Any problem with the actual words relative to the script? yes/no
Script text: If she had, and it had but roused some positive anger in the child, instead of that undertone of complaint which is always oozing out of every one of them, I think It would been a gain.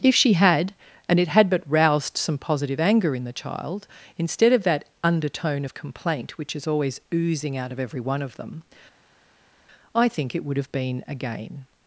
yes